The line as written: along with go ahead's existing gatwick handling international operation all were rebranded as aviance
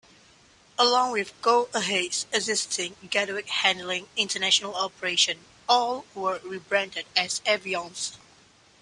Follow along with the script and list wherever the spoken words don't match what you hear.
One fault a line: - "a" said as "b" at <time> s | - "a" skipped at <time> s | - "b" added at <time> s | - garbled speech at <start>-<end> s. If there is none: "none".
none